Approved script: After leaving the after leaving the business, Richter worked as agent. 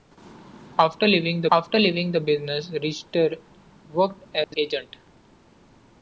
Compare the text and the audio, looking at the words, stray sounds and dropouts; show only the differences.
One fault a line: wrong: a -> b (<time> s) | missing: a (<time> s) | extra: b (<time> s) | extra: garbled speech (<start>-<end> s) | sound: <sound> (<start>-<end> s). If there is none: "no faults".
sound: dropout (4.4-4.5 s)